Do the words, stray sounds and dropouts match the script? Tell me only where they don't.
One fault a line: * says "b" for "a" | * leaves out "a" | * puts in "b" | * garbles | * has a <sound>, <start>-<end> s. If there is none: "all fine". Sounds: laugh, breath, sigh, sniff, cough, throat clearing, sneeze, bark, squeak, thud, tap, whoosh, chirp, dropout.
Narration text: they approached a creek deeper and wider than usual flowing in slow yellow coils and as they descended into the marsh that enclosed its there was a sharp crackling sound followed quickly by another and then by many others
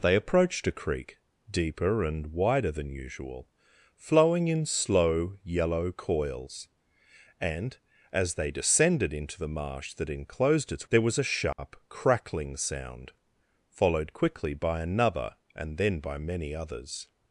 * has a dropout, 11.5-11.6 s